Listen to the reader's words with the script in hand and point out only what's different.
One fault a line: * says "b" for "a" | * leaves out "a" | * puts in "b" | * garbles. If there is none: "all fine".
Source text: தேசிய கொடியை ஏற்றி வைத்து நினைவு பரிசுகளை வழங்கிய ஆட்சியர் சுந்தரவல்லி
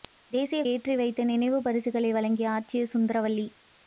* leaves out "கொடியை"